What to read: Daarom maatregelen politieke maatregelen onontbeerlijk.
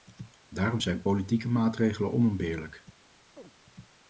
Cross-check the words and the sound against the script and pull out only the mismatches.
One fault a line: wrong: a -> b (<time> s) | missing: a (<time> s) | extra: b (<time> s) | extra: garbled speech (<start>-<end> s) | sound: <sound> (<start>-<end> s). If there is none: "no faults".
wrong: maatregelen -> zijn (0.8 s)
sound: chirp (3.4-3.5 s)